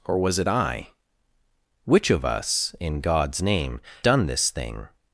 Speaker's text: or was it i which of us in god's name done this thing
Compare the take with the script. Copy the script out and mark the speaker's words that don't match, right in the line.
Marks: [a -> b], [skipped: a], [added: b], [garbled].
or was it i which of us in god's name done this thing